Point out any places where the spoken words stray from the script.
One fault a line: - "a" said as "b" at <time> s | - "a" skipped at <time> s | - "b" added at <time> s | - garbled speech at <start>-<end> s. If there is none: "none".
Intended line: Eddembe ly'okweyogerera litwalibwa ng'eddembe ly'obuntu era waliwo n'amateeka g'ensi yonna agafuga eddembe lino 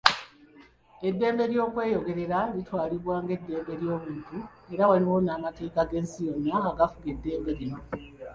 none